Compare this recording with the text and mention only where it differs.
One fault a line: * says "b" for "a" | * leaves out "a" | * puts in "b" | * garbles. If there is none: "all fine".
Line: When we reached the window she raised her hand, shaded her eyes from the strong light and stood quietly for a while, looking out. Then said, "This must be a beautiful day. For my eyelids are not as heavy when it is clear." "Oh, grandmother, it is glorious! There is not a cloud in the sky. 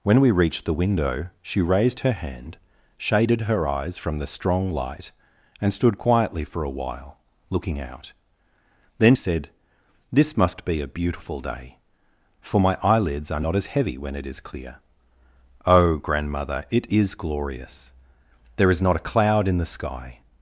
all fine